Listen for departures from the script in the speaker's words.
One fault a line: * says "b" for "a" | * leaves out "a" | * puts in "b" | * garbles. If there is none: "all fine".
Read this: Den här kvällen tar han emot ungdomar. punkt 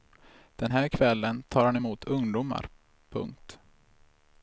all fine